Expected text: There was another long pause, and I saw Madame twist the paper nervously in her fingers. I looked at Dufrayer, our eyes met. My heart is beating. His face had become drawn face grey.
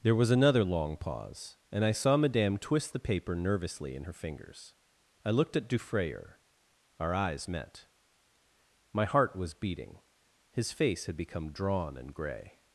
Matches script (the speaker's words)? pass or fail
fail